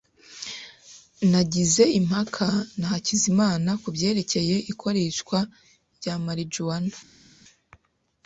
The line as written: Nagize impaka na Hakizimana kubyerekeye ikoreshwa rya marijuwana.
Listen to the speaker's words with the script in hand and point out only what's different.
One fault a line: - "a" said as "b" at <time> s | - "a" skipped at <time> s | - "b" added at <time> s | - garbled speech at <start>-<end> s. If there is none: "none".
none